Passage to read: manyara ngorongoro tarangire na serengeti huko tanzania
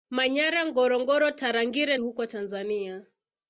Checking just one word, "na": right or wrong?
wrong